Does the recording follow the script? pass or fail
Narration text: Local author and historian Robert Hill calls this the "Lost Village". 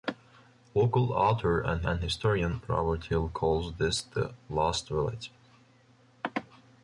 fail